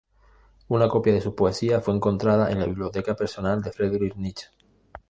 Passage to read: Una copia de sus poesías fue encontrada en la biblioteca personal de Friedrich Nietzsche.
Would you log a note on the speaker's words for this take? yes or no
no